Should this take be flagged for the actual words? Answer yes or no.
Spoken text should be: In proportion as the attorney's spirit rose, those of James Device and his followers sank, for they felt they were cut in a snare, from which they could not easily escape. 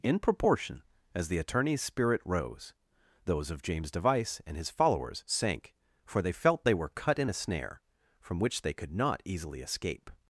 no